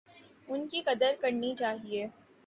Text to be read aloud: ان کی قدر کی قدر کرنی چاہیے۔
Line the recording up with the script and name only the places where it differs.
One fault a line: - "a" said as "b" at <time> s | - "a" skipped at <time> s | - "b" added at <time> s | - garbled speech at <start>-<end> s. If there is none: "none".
- "کی قدر" skipped at 1.1 s